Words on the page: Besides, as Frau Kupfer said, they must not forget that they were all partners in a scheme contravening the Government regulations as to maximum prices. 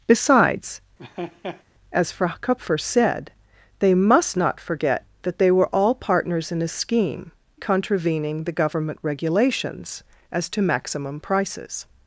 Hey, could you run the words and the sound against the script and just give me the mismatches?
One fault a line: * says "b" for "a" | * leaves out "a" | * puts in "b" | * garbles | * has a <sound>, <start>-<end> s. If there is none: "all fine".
* has a laugh, 1.0-1.6 s